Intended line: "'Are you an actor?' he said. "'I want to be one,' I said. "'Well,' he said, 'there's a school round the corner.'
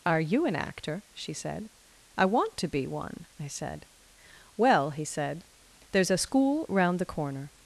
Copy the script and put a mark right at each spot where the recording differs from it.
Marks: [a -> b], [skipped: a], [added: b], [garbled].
"'Are you an actor?' [he -> she] said. "'I want to be one,' I said. "'Well,' he said, 'there's a school round the corner.'